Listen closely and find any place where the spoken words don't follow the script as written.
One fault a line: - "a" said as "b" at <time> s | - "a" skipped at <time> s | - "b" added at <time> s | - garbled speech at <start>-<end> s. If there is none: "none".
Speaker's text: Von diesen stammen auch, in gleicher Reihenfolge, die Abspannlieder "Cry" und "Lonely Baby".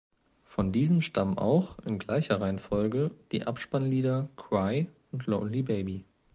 none